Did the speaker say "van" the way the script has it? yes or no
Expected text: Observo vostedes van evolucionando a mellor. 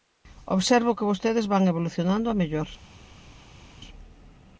yes